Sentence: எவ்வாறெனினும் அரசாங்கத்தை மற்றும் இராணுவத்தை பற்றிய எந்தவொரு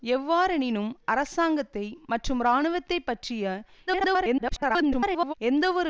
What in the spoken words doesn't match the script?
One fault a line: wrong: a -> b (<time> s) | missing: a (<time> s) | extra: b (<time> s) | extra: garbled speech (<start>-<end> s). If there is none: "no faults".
extra: garbled speech (3.9-5.3 s)